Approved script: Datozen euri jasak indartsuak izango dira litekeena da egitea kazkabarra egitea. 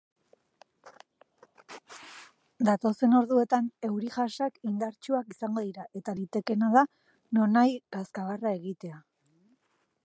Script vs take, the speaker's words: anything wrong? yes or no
yes